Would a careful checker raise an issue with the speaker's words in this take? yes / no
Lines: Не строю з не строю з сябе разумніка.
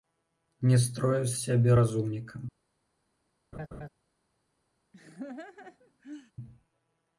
yes